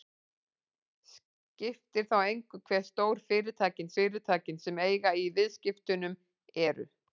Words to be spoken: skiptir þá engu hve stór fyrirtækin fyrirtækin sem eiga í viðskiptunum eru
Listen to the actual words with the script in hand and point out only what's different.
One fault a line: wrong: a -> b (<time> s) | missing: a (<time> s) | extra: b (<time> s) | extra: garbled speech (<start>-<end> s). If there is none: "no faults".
no faults